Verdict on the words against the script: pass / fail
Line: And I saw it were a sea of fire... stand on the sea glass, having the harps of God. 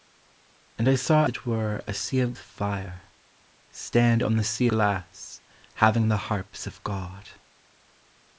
pass